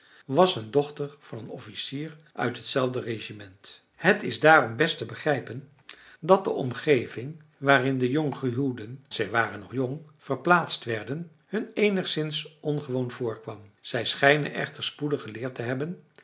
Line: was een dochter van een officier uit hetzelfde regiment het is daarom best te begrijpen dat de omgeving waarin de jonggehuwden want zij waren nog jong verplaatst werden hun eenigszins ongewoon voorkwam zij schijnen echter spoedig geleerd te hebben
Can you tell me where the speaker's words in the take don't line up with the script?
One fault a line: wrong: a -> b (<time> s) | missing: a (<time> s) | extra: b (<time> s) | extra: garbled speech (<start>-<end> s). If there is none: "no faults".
missing: want (9.1 s)